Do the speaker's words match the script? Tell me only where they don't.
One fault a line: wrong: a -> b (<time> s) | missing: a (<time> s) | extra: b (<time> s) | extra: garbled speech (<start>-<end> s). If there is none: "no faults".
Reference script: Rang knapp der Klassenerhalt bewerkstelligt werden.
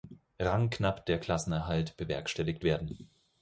no faults